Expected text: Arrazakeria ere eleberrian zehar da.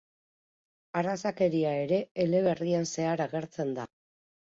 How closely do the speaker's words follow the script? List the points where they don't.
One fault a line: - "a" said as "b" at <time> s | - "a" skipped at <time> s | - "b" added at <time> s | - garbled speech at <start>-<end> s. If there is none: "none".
- "agertzen" added at 3.3 s